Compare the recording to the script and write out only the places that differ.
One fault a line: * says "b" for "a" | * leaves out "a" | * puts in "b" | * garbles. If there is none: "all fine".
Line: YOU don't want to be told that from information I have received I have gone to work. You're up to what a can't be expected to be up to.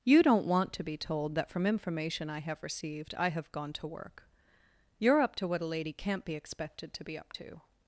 * puts in "lady"